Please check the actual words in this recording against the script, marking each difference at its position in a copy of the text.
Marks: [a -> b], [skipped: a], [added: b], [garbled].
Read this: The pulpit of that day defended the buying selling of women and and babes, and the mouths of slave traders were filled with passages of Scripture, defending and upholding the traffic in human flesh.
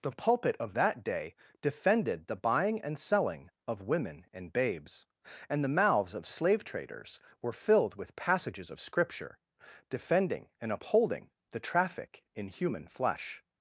The pulpit of that day defended the buying [added: and] selling of women and [skipped: and] babes, and the mouths of slave traders were filled with passages of Scripture, defending and upholding the traffic in human flesh.